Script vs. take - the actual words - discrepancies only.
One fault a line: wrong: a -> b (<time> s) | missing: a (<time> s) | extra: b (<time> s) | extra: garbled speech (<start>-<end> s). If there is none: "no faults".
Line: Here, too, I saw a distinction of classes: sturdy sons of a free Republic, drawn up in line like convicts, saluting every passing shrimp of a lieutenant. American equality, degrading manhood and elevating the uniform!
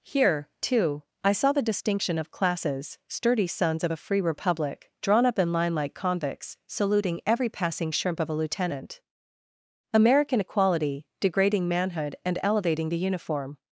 wrong: a -> the (1.5 s)